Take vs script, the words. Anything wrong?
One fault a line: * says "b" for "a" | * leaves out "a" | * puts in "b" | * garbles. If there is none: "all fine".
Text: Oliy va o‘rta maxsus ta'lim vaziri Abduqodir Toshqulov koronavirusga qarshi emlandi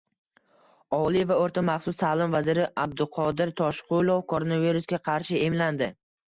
all fine